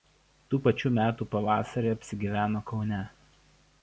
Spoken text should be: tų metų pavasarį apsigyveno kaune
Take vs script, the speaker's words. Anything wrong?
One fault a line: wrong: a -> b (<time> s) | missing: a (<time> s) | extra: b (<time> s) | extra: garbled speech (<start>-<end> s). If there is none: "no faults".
extra: pačių (0.7 s)